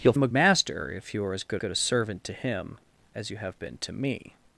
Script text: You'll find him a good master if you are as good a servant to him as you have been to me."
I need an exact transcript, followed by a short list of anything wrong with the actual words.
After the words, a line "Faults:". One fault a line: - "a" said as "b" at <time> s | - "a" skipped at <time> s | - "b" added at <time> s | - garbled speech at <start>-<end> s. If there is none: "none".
You'll him a master if you are as good good a servant to him as you have been to me."
Faults:
- "find" skipped at 0.1 s
- "good" skipped at 0.3 s
- "good" added at 1.5 s